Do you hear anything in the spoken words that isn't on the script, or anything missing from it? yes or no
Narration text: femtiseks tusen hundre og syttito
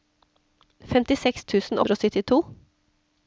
no